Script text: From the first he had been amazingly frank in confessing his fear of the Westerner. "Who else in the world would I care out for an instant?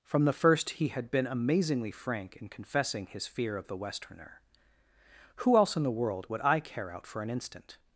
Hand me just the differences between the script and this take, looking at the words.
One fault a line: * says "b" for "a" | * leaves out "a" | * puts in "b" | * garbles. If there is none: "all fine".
all fine